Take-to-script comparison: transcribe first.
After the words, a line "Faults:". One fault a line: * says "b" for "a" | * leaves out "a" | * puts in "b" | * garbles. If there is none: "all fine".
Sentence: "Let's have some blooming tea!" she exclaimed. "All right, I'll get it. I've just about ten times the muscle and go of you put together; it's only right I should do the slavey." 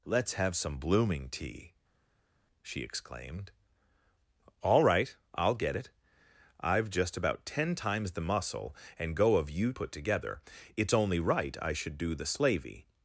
"Let's have some blooming tea!" she exclaimed. "All right, I'll get it. I've just about ten times the muscle and go of you put together; it's only right I should do the slavey."
Faults:
all fine